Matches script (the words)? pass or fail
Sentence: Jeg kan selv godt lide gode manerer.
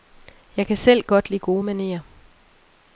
pass